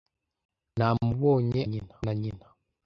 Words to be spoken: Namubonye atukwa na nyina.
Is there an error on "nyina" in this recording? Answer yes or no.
no